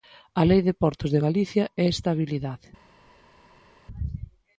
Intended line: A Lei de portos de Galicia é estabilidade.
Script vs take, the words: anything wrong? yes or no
no